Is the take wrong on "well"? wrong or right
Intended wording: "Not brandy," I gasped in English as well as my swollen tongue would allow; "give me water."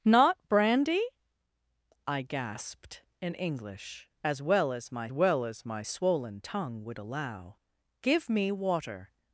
right